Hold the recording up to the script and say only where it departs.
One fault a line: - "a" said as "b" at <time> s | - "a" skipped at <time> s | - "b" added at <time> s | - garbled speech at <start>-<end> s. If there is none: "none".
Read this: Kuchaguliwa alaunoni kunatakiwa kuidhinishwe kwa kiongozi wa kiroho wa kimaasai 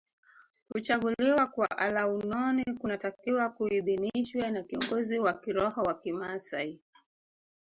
- "kwa" added at 1.5 s
- "kwa" said as "na" at 4.5 s